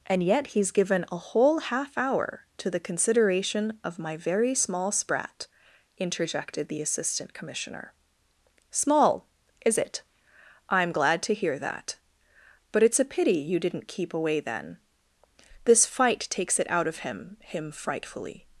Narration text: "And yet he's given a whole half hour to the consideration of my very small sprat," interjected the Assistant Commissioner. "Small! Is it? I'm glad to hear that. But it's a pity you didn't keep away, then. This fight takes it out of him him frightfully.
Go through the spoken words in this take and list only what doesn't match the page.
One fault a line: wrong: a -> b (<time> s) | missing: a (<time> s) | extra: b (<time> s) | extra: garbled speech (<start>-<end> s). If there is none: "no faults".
no faults